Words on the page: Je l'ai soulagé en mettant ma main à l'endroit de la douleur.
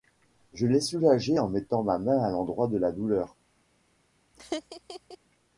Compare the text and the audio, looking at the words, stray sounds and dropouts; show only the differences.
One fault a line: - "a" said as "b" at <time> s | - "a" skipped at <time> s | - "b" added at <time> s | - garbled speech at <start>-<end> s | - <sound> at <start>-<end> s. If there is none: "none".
- laugh at 4.3-5.2 s